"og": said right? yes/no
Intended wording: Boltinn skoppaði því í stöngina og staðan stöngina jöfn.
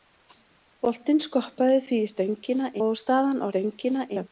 yes